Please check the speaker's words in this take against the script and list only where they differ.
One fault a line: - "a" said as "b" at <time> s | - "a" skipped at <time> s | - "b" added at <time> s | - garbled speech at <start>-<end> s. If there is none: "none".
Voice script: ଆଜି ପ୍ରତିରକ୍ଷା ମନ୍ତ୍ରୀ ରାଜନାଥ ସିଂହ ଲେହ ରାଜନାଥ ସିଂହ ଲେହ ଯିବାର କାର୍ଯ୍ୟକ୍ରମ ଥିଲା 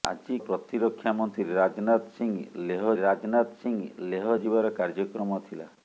none